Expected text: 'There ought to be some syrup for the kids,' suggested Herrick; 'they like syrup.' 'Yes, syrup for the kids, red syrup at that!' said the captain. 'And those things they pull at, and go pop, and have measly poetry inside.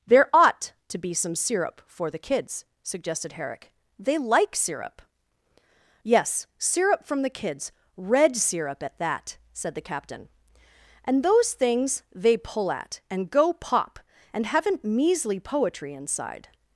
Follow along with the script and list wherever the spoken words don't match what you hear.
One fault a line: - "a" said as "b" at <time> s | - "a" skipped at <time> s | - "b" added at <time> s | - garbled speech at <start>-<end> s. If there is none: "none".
- "for" said as "from" at 7.0 s
- "have" said as "haven't" at 14.4 s